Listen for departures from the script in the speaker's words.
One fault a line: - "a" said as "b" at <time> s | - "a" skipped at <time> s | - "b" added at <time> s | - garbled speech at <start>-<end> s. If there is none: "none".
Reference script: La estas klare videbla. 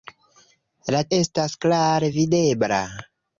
none